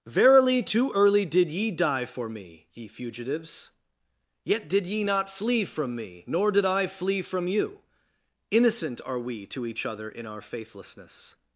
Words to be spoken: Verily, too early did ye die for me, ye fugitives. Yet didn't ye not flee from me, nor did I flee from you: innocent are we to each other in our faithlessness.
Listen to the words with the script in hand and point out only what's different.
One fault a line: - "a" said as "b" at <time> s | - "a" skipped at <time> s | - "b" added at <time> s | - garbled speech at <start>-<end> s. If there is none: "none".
- "didn't" said as "did" at 4.7 s